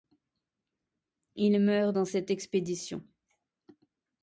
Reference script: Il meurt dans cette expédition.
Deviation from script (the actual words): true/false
false